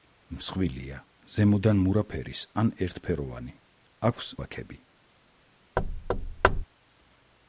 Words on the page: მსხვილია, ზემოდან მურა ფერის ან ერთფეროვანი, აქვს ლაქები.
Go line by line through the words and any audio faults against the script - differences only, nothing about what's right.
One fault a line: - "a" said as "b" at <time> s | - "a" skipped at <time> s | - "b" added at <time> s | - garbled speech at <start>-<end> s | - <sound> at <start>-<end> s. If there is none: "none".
- thud at 5.8-6.6 s